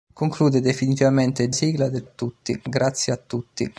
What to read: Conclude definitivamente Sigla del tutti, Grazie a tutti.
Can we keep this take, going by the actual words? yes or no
yes